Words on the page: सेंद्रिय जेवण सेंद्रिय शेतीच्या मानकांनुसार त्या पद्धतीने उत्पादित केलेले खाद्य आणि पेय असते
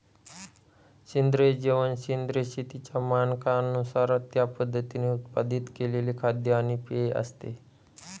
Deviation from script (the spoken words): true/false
false